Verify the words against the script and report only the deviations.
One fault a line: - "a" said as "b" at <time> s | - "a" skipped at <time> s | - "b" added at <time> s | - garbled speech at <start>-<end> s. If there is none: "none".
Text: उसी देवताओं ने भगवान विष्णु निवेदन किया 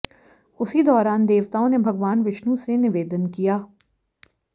- "दौरान" added at 0.8 s
- "से" added at 2.5 s